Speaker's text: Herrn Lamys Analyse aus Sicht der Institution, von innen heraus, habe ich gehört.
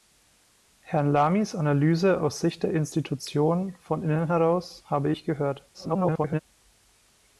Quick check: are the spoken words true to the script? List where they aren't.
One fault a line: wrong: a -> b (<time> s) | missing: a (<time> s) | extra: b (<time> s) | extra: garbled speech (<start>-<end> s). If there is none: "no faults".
extra: garbled speech (5.7-6.4 s)